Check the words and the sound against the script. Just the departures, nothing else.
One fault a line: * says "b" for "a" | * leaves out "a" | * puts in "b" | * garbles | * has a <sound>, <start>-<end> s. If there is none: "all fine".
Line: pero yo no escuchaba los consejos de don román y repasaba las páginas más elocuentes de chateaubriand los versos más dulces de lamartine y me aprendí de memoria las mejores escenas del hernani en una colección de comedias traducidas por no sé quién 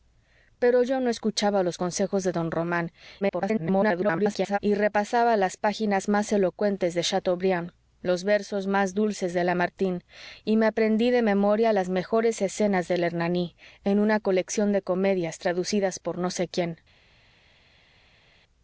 * garbles